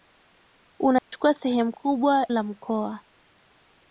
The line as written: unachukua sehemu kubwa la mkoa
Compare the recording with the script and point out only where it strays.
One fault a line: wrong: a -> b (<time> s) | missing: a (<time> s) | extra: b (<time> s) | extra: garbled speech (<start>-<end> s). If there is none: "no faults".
no faults